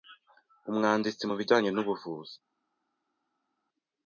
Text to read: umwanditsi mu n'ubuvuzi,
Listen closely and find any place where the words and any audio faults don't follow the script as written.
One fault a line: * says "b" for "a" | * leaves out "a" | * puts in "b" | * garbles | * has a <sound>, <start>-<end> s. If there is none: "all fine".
* puts in "bijyanye"